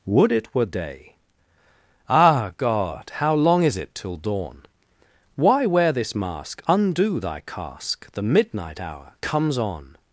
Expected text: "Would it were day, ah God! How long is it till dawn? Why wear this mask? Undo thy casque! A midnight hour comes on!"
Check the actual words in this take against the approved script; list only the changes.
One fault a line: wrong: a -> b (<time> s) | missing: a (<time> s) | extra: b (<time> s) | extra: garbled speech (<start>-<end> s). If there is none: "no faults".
wrong: A -> The (8.1 s)